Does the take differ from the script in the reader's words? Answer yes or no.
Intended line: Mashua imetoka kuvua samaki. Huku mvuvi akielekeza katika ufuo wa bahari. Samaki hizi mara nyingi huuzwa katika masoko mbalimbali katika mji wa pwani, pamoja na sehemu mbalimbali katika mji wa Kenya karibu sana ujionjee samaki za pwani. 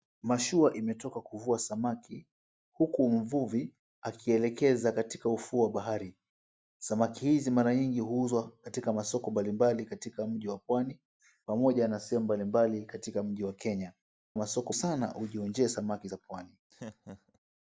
yes